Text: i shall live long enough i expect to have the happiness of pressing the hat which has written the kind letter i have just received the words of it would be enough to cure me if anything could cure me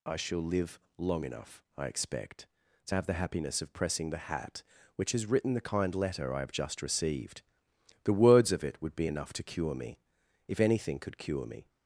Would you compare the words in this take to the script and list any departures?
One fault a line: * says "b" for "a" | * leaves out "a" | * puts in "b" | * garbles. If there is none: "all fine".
all fine